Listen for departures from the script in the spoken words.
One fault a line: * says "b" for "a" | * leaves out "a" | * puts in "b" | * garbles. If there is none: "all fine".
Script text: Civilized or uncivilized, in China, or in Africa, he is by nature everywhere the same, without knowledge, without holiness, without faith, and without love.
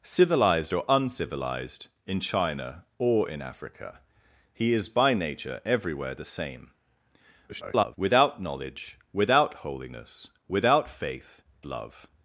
* garbles
* leaves out "and without"